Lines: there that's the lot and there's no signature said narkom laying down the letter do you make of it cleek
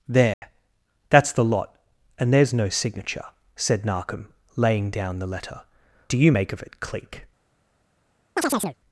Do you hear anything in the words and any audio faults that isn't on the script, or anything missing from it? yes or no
yes